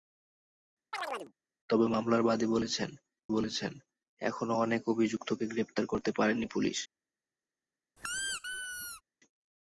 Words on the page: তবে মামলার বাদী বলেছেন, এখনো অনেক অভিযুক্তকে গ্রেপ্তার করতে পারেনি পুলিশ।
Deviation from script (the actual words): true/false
true